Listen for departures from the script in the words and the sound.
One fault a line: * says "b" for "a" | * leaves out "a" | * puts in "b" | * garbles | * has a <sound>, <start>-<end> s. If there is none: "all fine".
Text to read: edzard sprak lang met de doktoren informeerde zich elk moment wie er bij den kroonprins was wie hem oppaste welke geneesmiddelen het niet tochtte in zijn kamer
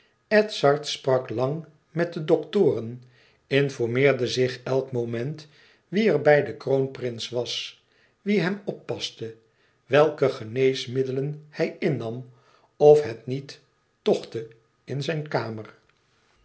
* puts in "hij innam of"